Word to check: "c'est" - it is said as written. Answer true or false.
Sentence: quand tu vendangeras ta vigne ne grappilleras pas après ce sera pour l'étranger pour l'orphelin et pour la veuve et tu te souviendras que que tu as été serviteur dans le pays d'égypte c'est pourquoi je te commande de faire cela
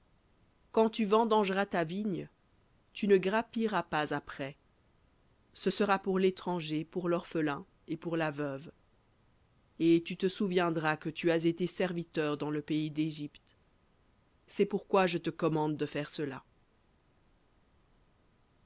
true